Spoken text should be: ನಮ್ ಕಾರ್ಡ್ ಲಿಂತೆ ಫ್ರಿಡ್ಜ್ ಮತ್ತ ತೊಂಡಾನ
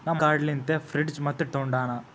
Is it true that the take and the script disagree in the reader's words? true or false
false